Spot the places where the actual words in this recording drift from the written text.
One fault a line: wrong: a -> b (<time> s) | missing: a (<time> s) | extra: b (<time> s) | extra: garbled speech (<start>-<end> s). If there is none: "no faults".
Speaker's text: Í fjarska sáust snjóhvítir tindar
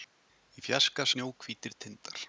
missing: sáust (1.1 s)